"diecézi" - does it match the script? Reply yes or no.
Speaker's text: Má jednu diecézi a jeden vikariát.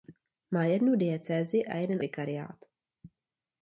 yes